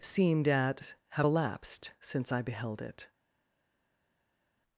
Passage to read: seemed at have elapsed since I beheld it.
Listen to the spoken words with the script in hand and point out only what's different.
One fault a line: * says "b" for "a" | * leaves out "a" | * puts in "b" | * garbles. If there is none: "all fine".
all fine